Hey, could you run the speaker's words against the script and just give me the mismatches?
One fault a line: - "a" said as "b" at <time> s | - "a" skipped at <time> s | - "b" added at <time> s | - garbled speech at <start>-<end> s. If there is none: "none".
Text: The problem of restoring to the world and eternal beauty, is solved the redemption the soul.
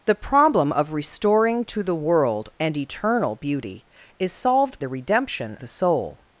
none